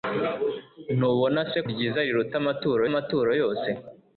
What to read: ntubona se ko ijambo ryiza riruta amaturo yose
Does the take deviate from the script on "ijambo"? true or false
true